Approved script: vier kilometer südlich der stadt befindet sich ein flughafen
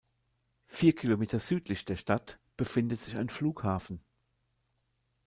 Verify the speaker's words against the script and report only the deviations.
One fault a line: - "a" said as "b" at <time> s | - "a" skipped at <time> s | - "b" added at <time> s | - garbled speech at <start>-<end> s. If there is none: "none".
none